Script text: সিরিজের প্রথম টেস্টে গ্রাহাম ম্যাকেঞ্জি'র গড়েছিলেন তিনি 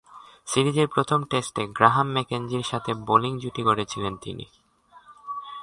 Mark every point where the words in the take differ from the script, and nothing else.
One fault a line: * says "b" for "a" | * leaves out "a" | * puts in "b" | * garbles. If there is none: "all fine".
* puts in "সাথে বোলিং জুটি"